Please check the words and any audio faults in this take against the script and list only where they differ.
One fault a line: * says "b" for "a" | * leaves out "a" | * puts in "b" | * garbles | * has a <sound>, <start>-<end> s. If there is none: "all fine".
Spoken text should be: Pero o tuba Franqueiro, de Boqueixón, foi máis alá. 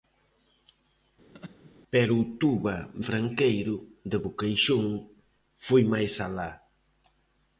* has a laugh, 1.3-1.7 s